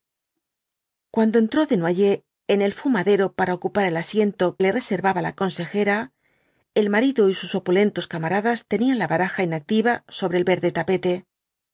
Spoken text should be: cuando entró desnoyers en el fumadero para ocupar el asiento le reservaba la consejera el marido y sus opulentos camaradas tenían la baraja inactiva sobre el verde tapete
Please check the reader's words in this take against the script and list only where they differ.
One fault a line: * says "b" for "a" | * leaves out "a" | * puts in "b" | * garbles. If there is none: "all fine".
all fine